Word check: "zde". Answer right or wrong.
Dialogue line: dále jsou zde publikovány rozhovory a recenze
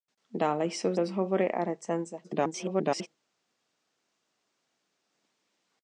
wrong